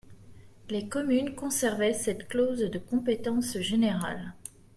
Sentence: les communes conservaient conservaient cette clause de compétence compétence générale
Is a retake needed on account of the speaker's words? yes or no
yes